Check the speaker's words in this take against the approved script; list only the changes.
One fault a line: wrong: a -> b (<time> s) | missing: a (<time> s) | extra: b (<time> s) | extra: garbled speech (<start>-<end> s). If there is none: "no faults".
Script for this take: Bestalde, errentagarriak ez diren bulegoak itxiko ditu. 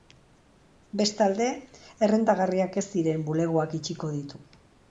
no faults